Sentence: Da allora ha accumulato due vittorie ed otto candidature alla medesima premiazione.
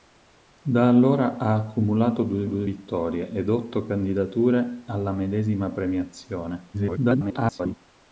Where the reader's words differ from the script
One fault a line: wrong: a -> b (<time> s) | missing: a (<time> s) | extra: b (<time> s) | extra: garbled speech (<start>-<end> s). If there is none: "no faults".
extra: due (2.4 s)
extra: garbled speech (6.7-7.7 s)